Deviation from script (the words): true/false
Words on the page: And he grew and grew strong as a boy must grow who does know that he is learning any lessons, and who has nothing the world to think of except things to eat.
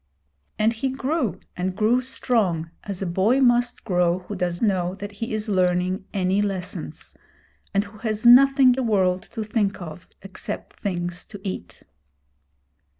false